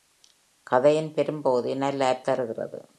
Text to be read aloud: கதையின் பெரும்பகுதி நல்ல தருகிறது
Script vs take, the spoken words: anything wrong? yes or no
no